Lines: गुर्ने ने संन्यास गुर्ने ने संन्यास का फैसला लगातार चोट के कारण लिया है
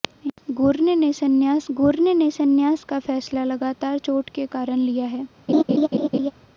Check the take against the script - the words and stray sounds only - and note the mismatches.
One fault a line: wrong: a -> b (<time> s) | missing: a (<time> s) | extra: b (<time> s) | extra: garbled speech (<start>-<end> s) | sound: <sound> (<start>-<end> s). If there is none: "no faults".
sound: laugh (5.5-6.3 s)